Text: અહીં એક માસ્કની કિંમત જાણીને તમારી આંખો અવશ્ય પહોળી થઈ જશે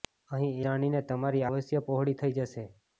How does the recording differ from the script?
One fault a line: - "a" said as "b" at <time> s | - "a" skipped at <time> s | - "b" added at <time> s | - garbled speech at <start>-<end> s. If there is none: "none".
- "એક માસ્કની કિંમત" skipped at 0.6 s
- "આંખો" skipped at 1.5 s